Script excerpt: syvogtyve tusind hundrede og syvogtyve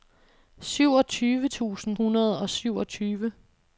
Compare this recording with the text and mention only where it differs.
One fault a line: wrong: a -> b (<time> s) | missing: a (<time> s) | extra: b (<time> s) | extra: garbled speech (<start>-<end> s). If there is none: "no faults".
no faults